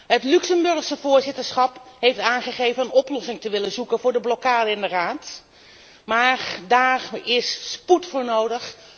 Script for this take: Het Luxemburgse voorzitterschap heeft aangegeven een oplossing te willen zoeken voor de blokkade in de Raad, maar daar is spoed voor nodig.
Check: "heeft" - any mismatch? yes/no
no